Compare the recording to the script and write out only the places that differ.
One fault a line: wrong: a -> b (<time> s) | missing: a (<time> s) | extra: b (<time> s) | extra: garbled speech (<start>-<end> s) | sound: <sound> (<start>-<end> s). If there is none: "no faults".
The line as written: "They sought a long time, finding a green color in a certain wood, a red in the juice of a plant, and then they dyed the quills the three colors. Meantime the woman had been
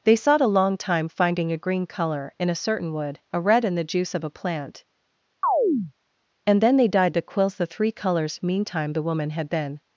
sound: chirp (5.4-5.9 s)